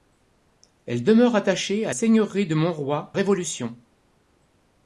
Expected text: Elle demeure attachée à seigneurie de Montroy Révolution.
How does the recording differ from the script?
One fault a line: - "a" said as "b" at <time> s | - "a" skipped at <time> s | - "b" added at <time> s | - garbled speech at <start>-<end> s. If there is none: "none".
none